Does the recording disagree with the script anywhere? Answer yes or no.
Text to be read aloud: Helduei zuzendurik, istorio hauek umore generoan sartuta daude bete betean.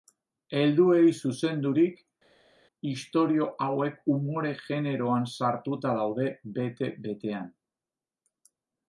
no